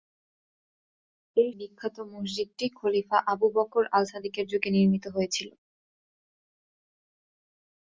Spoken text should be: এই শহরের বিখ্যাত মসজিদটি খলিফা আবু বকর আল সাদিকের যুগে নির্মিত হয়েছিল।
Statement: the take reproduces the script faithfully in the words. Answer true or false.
false